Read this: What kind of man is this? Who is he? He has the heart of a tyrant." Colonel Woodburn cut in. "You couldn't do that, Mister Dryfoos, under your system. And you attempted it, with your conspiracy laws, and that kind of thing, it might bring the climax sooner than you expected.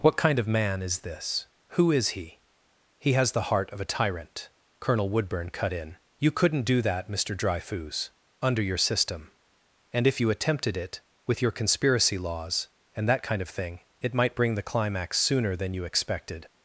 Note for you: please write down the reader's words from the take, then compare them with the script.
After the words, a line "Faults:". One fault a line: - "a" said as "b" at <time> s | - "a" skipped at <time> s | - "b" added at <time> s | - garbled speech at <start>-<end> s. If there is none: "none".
What kind of man is this? Who is he? He has the heart of a tyrant." Colonel Woodburn cut in. "You couldn't do that, Mister Dryfoos, under your system. And if you attempted it, with your conspiracy laws, and that kind of thing, it might bring the climax sooner than you expected.
Faults:
- "if" added at 10.1 s